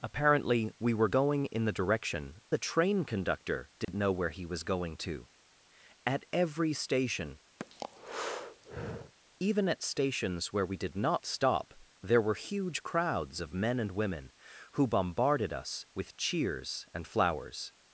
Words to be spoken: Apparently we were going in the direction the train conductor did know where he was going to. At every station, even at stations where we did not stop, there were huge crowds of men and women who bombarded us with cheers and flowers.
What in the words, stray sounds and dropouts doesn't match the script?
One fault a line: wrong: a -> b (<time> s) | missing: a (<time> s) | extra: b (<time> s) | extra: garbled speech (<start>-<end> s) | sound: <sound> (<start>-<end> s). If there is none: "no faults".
sound: dropout (3.8-3.9 s)
sound: breath (7.6-9.1 s)